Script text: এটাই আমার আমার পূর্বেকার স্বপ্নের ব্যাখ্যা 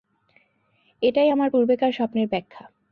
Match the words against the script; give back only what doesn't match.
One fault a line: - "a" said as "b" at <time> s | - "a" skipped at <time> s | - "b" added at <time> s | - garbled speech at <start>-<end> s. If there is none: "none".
- "আমার" skipped at 1.5 s